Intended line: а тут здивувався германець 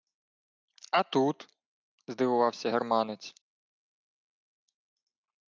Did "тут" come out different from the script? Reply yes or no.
no